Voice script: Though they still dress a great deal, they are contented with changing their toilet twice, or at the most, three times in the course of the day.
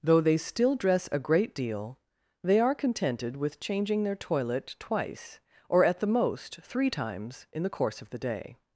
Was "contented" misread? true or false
false